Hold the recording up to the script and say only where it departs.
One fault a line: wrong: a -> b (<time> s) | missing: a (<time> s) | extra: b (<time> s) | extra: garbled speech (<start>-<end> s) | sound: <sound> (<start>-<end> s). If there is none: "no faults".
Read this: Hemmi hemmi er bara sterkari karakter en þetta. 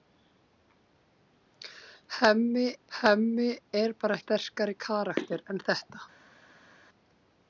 no faults